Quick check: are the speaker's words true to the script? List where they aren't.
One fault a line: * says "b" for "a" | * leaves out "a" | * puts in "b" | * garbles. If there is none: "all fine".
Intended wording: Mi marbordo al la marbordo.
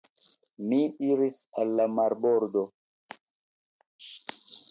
* says "iris" for "marbordo"